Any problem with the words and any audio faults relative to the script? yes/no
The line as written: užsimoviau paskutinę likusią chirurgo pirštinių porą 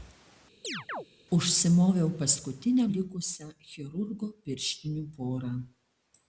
yes